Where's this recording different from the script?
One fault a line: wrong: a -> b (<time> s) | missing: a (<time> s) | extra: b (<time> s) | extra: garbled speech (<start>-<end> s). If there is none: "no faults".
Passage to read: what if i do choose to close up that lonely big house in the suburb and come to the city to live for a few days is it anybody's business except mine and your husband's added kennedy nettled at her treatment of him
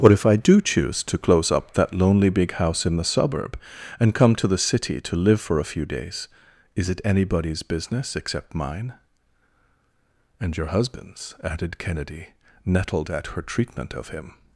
no faults